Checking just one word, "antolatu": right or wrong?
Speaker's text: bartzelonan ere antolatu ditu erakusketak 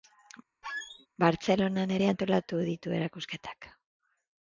right